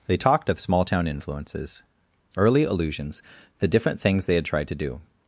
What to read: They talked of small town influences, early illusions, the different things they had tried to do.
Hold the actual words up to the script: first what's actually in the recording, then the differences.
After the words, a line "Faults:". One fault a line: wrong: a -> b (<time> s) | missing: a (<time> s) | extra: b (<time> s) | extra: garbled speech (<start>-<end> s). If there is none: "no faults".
They talked of small town influences, early illusions, the different things they had tried to do.
Faults:
no faults